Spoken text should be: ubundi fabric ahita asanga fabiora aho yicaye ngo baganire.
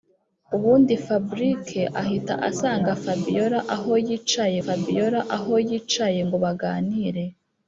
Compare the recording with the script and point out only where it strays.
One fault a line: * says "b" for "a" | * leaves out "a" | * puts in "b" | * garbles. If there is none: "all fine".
* puts in "fabiora aho yicaye"